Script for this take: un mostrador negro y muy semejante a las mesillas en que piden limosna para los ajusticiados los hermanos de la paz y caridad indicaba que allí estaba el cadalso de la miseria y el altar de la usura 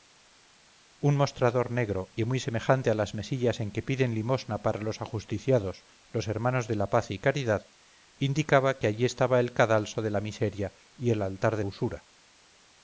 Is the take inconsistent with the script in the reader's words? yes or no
yes